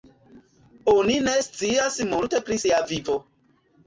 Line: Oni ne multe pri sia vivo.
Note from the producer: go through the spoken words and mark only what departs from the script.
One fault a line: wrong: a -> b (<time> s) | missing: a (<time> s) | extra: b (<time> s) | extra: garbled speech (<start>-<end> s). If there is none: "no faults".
extra: scias (1.5 s)